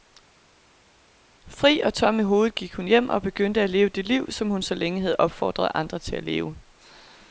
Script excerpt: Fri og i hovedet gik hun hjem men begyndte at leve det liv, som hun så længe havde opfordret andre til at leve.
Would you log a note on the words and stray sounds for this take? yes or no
yes